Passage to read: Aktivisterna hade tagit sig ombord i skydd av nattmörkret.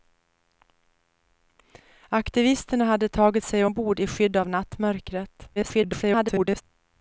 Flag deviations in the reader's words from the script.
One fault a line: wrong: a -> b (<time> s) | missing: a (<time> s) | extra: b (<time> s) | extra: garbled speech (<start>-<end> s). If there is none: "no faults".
extra: garbled speech (5.6-6.6 s)